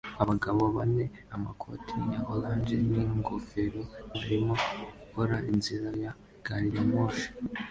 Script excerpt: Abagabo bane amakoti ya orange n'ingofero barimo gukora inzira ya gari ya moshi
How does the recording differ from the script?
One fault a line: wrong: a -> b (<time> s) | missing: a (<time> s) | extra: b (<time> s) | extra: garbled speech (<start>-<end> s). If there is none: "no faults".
no faults